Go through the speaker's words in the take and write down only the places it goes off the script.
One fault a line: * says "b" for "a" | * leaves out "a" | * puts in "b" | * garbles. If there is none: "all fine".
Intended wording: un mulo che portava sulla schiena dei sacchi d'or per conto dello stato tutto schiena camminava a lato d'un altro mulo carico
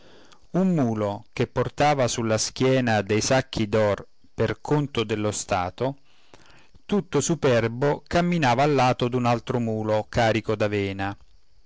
* says "superbo" for "schiena"